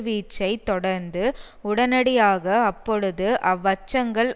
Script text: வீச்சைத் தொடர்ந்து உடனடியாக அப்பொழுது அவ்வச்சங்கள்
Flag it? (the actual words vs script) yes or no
no